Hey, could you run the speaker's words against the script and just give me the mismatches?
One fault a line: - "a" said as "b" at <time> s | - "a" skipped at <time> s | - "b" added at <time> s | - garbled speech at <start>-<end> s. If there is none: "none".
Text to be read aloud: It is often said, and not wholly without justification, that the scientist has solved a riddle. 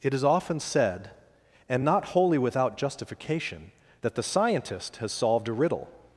none